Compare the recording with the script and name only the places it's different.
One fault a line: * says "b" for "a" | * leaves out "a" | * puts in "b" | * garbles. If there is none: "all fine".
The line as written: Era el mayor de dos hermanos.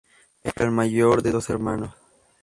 all fine